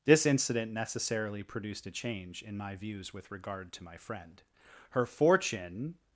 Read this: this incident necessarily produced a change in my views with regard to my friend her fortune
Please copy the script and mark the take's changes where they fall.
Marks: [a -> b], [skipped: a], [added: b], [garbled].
this incident necessarily produced a change in my views with regard to my friend her fortune